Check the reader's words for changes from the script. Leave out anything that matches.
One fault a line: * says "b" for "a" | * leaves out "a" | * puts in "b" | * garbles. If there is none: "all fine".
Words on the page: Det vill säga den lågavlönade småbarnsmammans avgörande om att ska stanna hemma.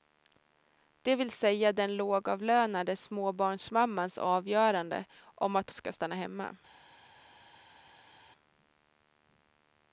all fine